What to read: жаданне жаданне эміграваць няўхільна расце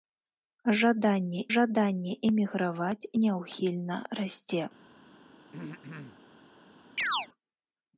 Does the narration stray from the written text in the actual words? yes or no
no